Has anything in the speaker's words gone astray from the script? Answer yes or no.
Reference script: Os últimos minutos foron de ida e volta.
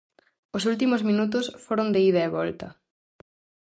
no